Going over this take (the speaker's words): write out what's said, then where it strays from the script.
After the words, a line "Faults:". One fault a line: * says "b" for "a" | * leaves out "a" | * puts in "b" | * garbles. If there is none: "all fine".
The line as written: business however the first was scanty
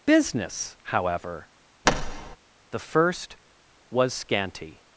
business however the first was scanty
Faults:
all fine